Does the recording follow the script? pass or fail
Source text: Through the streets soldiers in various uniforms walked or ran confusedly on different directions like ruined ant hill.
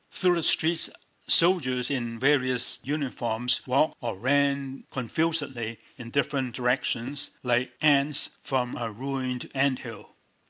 fail